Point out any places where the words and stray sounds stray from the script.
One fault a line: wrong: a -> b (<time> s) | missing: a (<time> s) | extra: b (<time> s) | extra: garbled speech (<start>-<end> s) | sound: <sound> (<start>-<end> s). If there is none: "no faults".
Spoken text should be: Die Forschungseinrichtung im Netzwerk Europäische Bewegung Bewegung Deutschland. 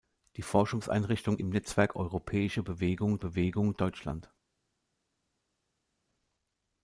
no faults